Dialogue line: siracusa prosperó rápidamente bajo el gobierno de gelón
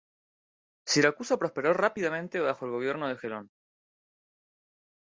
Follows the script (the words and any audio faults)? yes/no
yes